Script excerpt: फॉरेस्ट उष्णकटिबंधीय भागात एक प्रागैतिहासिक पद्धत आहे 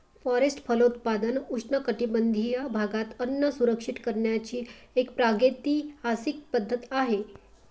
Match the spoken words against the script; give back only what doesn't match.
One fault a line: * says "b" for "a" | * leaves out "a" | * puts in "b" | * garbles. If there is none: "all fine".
* puts in "फलोत्पादन"
* puts in "अन्न सुरक्षित करण्याची"